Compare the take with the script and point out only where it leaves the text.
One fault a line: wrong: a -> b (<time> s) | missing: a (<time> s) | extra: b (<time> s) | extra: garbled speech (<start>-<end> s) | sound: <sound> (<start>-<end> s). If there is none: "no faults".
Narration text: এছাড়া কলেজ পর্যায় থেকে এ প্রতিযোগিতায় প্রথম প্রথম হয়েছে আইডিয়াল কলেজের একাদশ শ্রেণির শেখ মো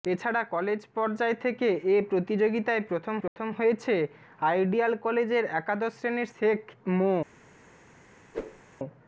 sound: dropout (3.3-3.4 s)
sound: whoosh (8.3-8.6 s)